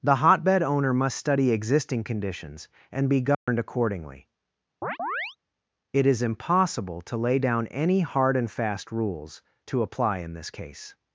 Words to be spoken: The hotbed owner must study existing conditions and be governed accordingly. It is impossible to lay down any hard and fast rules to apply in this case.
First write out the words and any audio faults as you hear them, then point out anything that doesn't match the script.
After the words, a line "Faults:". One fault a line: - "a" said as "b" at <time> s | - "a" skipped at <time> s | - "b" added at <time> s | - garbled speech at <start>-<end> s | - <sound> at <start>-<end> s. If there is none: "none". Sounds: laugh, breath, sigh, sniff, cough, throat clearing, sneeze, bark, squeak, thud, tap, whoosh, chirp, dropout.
The hotbed owner must study existing conditions and be governed accordingly. It is impossible to lay down any hard and fast rules to apply in this case.
Faults:
- dropout at 3.3-3.5 s
- chirp at 4.8-5.4 s